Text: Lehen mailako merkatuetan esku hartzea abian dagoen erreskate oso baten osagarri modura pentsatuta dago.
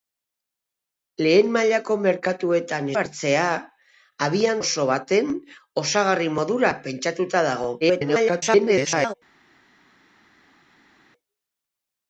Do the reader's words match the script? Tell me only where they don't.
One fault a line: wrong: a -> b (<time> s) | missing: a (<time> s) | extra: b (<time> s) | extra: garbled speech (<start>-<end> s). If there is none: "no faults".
missing: esku (2.9 s)
missing: dagoen erreskate (4.6 s)
extra: garbled speech (7.8-9.1 s)